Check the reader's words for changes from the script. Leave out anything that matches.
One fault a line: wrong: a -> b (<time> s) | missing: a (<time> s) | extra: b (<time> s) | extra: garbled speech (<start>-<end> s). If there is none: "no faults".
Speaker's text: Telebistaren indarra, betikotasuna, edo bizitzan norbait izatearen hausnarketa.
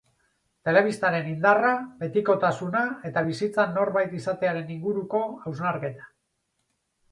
wrong: edo -> eta (3.1 s)
extra: inguruko (4.8 s)